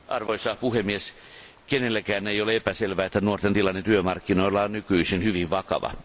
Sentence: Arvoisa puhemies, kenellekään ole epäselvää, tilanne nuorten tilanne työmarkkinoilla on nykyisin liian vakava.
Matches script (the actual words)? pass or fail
fail